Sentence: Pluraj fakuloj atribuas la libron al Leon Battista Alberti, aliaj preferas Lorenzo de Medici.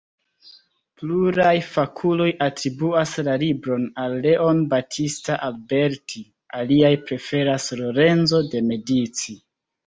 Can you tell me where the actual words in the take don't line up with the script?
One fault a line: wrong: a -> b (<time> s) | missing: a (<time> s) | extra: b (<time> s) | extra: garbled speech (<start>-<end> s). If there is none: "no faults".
no faults